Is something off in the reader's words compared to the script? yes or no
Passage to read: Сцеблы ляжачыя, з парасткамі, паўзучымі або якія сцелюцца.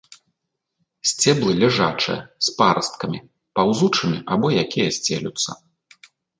no